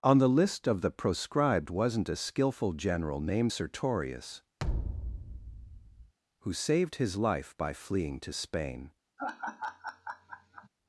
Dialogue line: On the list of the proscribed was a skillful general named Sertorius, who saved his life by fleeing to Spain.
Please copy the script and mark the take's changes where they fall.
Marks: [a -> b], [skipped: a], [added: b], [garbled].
On the list of the proscribed [was -> wasn't] a skillful general named Sertorius, who saved his life by fleeing to Spain.